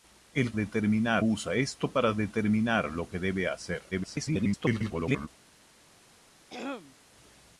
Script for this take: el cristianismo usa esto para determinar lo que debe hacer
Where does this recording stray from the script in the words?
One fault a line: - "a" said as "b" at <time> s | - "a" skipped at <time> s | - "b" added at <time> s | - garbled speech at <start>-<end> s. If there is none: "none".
- "cristianismo" said as "determinar" at 0.5 s
- garbled speech at 3.9-5.3 s